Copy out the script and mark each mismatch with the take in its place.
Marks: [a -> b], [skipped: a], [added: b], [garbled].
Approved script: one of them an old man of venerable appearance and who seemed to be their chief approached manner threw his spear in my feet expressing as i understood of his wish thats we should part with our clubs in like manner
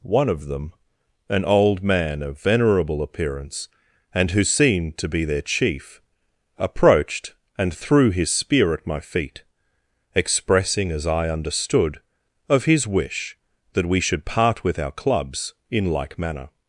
one of them an old man of venerable appearance and who seemed to be their chief approached [manner -> and] threw his spear [in -> at] my feet expressing as i understood of his wish [thats -> that] we should part with our clubs in like manner